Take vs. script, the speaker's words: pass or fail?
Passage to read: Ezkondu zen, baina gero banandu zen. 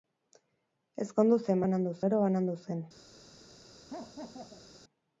fail